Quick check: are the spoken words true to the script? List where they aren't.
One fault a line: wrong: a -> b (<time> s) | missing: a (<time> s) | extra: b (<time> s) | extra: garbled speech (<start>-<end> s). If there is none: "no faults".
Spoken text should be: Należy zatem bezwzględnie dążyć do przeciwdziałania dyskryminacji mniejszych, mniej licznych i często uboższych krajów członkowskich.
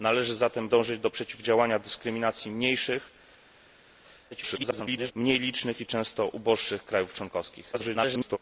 missing: bezwzględnie (0.7 s)
extra: garbled speech (4.3-5.1 s)
extra: garbled speech (7.7-8.4 s)